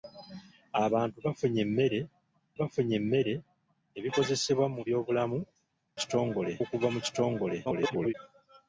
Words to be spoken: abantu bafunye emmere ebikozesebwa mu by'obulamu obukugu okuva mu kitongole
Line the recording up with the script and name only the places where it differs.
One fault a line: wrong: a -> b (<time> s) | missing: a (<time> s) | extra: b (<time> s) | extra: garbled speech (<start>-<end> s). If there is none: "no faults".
extra: bafunye emmere (2.6 s)
wrong: obukugu -> kitongole (6.0 s)
extra: garbled speech (7.6-8.1 s)